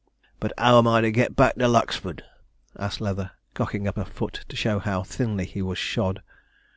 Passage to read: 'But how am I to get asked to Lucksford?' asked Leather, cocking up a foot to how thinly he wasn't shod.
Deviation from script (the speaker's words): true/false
true